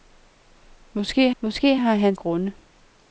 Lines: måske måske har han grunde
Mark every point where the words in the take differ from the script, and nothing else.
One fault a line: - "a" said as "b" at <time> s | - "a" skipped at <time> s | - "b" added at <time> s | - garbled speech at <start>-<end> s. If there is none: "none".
none